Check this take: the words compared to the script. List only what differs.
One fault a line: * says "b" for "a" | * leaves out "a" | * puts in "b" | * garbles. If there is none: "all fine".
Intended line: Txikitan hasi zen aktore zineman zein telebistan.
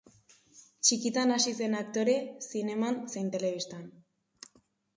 all fine